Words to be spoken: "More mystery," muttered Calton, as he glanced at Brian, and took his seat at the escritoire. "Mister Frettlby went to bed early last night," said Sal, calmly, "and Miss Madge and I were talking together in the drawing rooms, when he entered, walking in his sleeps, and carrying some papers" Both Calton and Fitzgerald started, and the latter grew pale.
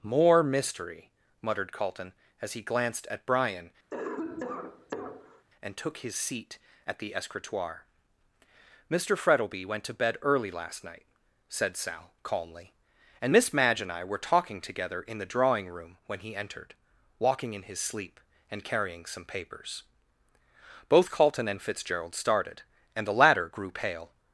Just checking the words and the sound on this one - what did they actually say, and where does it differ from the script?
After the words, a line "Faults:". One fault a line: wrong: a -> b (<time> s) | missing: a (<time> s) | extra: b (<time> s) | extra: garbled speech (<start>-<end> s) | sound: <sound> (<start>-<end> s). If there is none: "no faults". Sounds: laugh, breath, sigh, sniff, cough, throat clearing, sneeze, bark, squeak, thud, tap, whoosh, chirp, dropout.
"More mystery," muttered Calton, as he glanced at Brian, and took his seat at the escritoire. "Mister Frettlby went to bed early last night," said Sal, calmly, "and Miss Madge and I were talking together in the drawing room, when he entered, walking in his sleep, and carrying some papers" Both Calton and Fitzgerald started, and the latter grew pale.
Faults:
sound: cough (3.9-5.5 s)
wrong: rooms -> room (15.7 s)
wrong: sleeps -> sleep (17.8 s)